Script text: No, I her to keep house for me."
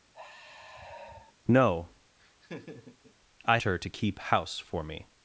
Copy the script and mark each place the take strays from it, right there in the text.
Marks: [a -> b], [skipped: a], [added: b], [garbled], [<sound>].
[sigh] No, [laugh] I her to keep house for me."